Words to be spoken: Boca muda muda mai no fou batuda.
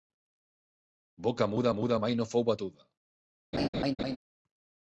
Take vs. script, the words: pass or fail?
pass